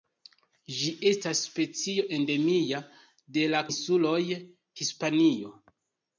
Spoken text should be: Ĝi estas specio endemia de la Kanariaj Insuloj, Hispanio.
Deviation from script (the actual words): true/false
true